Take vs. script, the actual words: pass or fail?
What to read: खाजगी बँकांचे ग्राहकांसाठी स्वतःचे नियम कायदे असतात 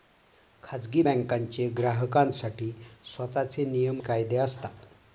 pass